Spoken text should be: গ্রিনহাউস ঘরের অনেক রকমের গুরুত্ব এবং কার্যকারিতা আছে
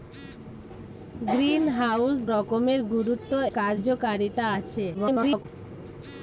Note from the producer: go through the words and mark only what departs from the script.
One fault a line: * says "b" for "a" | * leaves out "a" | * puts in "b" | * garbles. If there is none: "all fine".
* leaves out "ঘরের অনেক"
* leaves out "এবং"
* garbles